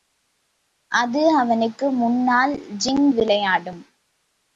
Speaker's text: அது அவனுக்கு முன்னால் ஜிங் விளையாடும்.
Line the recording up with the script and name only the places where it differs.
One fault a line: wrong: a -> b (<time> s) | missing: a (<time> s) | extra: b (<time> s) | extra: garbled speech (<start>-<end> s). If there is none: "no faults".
no faults